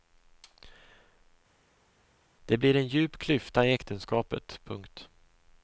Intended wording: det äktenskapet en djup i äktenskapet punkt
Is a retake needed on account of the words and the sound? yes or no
yes